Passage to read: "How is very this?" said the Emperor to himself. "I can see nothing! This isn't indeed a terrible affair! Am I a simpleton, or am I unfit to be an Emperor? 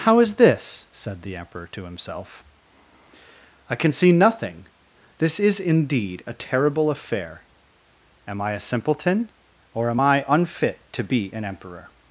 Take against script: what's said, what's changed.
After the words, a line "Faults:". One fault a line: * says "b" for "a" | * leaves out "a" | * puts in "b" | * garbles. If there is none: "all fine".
"How is this?" said the Emperor to himself. "I can see nothing! This is indeed a terrible affair! Am I a simpleton, or am I unfit to be an Emperor?
Faults:
* leaves out "very"
* says "is" for "isn't"